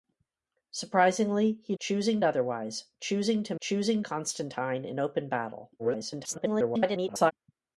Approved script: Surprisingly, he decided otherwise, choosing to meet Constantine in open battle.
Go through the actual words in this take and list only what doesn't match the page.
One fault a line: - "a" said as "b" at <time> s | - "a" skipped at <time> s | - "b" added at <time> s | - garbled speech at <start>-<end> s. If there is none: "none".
- "decided" said as "choosing" at 1.8 s
- "meet" said as "choosing" at 3.6 s
- garbled speech at 5.8-7.3 s